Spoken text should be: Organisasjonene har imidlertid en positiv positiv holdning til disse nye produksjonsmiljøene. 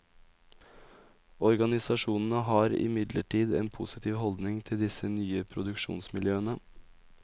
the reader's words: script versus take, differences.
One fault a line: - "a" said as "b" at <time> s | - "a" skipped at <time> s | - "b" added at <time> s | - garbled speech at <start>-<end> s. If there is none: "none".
- "positiv" skipped at 4.2 s